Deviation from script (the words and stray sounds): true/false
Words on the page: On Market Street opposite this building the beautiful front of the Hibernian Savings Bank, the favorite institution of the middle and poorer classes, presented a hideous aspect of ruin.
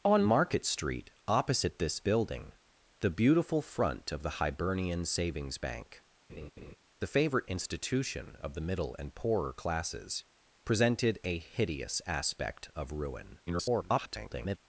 true